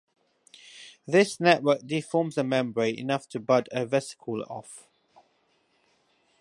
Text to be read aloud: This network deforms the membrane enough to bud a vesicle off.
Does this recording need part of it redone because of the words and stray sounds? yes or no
no